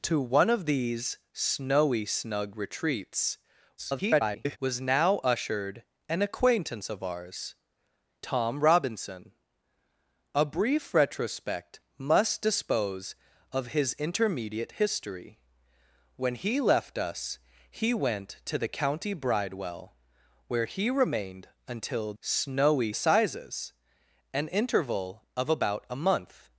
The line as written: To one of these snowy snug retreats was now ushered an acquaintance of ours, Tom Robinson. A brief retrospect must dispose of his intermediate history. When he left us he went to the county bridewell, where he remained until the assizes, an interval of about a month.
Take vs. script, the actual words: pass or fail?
fail